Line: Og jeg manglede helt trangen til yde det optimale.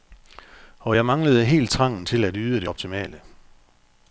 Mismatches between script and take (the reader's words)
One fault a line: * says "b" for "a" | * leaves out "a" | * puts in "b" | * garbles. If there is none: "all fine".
* puts in "at"